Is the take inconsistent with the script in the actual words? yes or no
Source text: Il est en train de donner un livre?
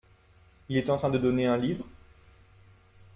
no